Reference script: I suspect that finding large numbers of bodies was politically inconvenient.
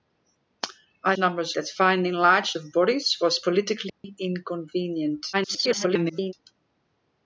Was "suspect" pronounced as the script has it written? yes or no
no